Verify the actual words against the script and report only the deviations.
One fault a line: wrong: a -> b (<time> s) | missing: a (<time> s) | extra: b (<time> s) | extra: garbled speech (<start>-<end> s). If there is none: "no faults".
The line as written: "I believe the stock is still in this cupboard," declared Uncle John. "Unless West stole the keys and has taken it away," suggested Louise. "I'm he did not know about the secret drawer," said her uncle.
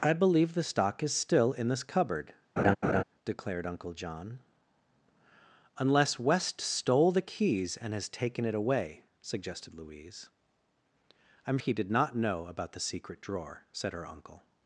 no faults